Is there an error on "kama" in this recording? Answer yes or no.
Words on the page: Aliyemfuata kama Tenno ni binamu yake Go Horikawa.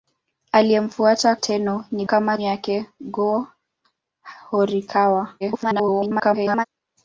yes